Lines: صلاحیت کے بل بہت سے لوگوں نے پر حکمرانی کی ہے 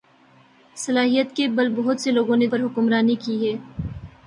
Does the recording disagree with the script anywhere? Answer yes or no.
no